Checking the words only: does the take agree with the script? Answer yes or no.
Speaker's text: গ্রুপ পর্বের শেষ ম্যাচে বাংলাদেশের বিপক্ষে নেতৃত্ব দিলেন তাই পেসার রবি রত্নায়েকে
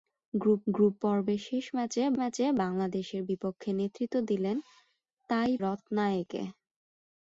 no